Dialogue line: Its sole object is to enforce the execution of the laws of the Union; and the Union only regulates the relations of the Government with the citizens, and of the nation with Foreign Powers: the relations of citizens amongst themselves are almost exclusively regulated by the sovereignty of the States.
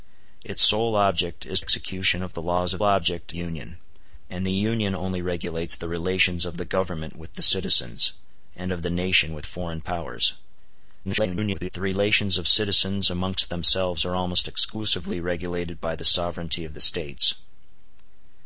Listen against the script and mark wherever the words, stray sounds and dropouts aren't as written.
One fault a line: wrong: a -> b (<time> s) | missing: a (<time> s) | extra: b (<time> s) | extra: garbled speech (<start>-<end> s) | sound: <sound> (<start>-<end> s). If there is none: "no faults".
missing: to enforce the (1.6 s)
wrong: the -> object (2.8 s)
extra: garbled speech (11.0-11.7 s)